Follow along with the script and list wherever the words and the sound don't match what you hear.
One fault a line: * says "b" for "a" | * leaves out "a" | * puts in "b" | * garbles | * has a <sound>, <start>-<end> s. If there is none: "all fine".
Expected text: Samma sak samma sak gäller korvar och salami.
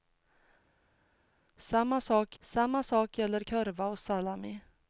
all fine